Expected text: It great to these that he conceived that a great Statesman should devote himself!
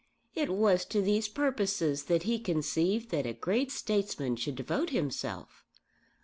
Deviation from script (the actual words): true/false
true